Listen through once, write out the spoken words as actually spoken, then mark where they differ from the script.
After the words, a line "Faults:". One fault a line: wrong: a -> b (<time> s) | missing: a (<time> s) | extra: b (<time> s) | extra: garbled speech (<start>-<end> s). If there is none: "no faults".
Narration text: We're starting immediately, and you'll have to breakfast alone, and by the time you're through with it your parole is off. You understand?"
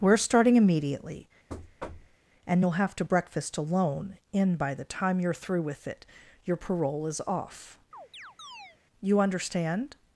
We're starting immediately, and you'll have to breakfast alone, in by the time you're through with it your parole is off. You understand?"
Faults:
wrong: and -> in (4.3 s)